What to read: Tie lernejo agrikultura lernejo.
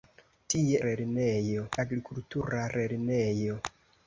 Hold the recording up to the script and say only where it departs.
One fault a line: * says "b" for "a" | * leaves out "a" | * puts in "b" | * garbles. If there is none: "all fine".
all fine